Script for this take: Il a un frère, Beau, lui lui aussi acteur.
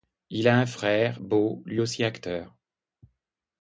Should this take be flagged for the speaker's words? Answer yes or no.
yes